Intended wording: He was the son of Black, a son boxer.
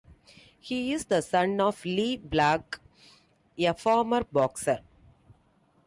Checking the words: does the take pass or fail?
fail